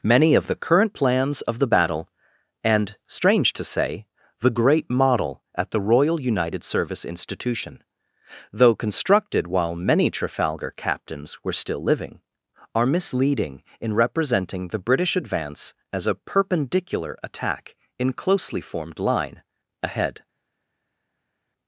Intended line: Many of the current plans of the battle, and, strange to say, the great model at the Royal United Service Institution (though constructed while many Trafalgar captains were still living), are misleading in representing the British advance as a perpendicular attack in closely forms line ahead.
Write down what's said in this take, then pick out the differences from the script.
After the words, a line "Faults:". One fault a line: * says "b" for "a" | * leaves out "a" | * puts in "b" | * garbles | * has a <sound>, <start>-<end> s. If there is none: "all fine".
Many of the current plans of the battle, and, strange to say, the great model at the Royal United Service Institution (though constructed while many Trafalgar captains were still living), are misleading in representing the British advance as a perpendicular attack in closely formed line ahead.
Faults:
* says "formed" for "forms"